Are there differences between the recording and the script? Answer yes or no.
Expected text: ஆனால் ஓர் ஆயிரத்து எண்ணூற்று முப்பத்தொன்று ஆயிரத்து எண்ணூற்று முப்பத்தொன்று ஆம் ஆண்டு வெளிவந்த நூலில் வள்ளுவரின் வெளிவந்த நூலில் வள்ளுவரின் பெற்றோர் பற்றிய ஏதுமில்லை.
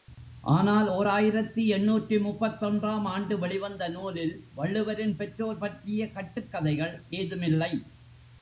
yes